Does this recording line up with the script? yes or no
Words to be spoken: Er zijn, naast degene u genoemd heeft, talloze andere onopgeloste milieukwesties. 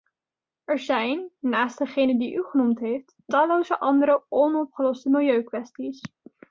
no